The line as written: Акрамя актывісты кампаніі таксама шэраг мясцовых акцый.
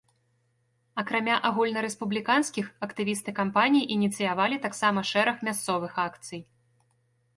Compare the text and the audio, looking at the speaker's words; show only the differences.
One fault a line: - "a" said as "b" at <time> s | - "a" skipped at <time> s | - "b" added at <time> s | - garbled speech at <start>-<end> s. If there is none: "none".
- "агульнарэспубліканскіх" added at 1.5 s
- "ініцыявалі" added at 4.0 s